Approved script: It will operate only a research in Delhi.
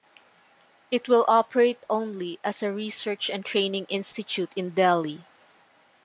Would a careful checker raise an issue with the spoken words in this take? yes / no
yes